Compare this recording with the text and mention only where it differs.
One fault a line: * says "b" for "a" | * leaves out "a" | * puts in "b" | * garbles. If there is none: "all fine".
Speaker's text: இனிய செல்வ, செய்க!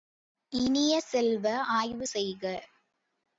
* puts in "ஆய்வு"